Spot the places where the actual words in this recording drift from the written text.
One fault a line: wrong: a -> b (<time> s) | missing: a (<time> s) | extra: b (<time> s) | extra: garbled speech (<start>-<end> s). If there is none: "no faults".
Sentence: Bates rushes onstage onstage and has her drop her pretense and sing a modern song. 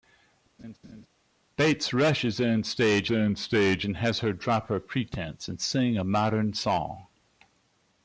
no faults